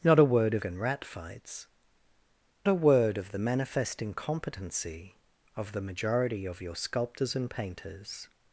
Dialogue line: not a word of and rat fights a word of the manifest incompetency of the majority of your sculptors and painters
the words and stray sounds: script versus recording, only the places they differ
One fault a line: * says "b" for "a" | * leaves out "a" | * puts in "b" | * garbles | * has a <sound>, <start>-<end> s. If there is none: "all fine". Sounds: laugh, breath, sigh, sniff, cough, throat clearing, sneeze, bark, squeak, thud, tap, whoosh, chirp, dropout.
all fine